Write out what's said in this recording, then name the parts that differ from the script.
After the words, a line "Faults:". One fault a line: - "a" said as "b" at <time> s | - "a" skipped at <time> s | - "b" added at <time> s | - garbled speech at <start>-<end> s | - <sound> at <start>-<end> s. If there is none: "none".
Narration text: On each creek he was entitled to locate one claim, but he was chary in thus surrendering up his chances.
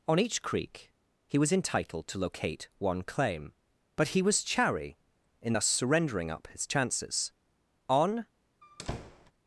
On each creek he was entitled to locate one claim, but he was chary in thus surrendering up his chances. On
Faults:
- "On" added at 7.9 s
- squeak at 8.6-9.3 s